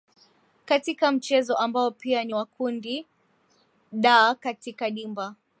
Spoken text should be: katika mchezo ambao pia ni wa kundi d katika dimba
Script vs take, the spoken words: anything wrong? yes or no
no